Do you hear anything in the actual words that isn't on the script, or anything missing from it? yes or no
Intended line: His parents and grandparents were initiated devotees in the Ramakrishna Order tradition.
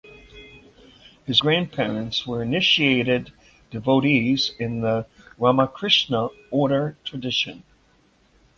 yes